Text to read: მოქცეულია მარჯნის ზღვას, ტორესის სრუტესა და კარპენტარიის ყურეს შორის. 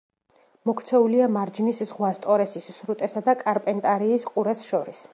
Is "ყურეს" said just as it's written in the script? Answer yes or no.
yes